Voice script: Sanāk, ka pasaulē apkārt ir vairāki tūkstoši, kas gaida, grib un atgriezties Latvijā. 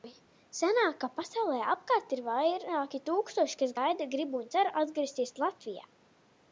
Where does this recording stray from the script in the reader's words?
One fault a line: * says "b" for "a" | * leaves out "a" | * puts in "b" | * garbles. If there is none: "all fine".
* puts in "cer"